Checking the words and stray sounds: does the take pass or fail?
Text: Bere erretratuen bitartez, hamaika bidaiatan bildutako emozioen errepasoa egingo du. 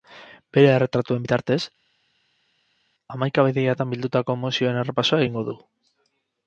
pass